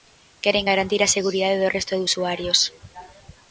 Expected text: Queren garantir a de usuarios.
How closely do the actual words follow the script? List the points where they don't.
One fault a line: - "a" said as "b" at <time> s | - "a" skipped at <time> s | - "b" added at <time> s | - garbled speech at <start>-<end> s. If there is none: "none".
- "seguridade do resto" added at 1.2 s